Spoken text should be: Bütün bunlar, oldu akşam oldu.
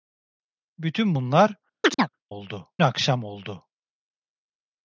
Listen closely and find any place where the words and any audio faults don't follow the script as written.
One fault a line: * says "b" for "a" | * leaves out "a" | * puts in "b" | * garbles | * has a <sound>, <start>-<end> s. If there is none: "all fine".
* has a chirp, 1.8-2.1 s